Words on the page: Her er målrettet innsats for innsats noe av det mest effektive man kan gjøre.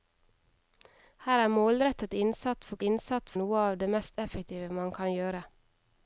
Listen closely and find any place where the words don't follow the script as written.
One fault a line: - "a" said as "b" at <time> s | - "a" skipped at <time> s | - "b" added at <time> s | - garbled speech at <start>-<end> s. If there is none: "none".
none